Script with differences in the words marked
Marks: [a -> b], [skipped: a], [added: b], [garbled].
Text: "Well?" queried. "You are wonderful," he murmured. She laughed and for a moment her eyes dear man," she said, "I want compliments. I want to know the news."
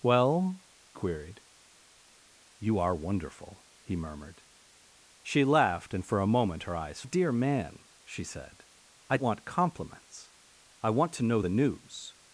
"Well?" queried. "You are wonderful," he murmured. She laughed and for a moment her eyes dear man," she said, "I want compliments. I want to know the news."